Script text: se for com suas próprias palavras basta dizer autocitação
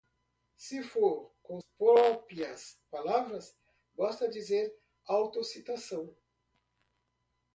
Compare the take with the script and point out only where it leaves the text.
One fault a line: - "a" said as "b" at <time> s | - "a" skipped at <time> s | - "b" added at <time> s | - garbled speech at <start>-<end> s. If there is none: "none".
- "suas" skipped at 1.6 s